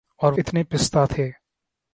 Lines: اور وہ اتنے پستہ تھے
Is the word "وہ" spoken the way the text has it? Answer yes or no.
no